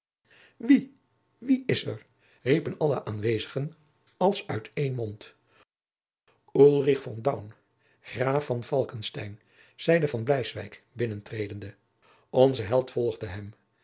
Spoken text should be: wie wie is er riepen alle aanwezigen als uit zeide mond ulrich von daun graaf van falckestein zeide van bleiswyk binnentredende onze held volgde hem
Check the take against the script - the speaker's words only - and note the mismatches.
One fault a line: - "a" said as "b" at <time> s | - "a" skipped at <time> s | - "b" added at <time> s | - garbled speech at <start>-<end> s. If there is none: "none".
- "zeide" said as "één" at 4.7 s